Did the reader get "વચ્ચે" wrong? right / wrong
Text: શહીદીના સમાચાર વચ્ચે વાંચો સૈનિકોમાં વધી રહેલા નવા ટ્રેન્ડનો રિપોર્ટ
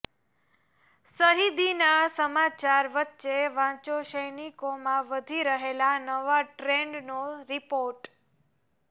right